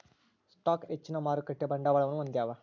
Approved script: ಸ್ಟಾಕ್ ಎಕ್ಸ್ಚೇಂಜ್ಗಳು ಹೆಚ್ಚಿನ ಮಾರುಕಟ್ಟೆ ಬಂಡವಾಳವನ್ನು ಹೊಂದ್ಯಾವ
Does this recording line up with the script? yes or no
no